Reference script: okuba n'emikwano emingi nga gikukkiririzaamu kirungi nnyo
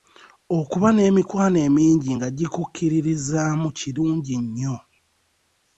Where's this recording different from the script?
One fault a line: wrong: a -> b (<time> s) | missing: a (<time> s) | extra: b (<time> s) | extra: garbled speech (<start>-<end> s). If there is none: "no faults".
no faults